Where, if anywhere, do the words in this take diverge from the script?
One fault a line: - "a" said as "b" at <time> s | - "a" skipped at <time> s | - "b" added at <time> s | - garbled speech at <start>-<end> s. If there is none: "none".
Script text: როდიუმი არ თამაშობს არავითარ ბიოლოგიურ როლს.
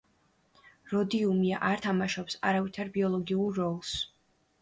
none